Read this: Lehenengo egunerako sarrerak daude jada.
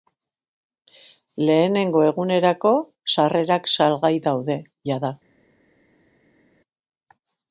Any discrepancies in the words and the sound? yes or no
yes